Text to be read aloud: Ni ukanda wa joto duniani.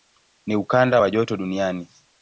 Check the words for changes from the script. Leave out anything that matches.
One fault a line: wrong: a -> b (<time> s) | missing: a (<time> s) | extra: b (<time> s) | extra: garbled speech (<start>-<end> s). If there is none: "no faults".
no faults